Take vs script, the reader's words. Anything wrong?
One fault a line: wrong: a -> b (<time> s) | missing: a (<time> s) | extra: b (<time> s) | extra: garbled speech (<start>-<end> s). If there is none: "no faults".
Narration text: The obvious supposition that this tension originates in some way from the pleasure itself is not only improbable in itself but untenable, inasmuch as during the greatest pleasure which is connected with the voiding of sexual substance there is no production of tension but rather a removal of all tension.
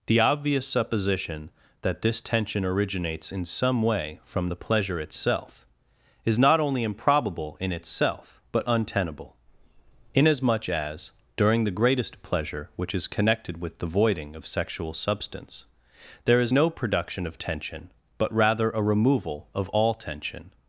no faults